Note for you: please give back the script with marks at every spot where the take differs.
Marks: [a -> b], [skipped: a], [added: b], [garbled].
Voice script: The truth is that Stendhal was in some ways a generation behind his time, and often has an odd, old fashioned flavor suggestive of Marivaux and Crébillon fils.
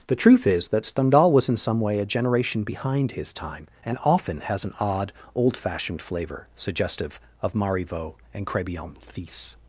The truth is that Stendhal was in some [ways -> way] a generation behind his time, and often has an odd, old fashioned flavor suggestive of Marivaux and Crébillon fils.